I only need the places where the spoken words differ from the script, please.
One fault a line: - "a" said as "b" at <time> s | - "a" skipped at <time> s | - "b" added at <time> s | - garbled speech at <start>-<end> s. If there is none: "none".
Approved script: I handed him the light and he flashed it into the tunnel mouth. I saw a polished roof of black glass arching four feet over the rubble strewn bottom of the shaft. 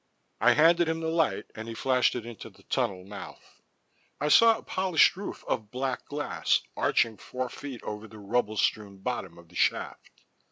none